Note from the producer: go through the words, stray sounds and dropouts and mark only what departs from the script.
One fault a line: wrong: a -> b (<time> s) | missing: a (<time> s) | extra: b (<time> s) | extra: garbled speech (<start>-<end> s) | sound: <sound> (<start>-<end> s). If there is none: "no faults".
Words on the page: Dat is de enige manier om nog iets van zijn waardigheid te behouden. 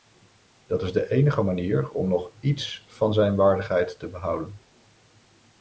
no faults